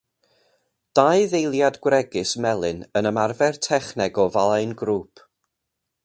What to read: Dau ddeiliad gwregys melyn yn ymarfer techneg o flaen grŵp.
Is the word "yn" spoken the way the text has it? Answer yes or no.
yes